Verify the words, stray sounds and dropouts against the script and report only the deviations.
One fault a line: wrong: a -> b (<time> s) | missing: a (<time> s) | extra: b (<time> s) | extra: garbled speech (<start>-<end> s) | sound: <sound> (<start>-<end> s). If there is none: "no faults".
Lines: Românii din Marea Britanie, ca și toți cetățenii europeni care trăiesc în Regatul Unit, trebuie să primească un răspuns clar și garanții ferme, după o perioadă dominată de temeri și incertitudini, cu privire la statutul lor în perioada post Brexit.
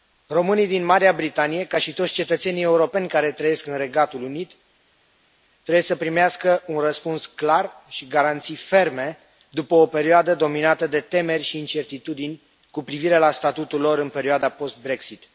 no faults